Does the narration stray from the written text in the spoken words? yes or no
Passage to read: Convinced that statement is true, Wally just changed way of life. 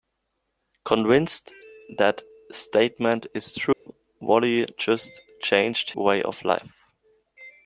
no